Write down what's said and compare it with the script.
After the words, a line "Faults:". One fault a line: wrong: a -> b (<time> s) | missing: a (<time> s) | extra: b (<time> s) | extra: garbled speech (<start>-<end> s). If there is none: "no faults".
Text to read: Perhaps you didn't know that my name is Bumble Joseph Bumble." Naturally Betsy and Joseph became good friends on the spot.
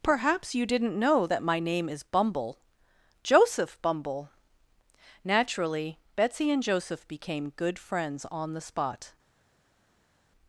Perhaps you didn't know that my name is Bumble Joseph Bumble." Naturally Betsy and Joseph became good friends on the spot.
Faults:
no faults